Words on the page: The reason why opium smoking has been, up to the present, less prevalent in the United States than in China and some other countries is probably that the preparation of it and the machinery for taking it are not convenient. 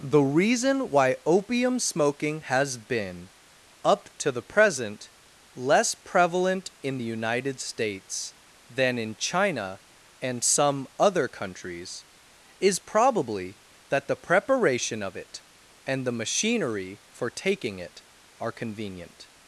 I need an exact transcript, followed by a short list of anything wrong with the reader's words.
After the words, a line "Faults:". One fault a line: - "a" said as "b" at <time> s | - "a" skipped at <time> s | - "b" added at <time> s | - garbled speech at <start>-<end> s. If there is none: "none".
The reason why opium smoking has been, up to the present, less prevalent in the United States than in China and some other countries is probably that the preparation of it and the machinery for taking it are convenient.
Faults:
- "not" skipped at 18.5 s